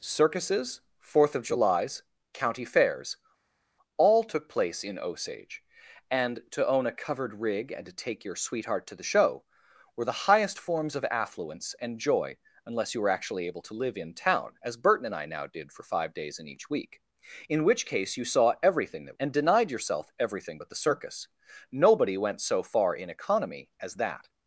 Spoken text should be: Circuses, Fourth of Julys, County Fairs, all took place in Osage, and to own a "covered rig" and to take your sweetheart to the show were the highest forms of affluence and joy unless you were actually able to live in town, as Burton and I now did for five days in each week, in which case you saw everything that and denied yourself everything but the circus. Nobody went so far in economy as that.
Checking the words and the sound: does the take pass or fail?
pass